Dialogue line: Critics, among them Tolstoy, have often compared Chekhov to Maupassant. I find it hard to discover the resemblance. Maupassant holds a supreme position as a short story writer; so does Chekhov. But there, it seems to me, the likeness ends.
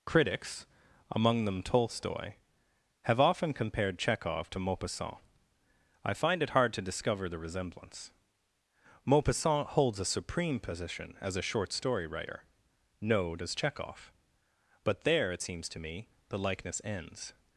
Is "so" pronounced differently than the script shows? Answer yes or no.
yes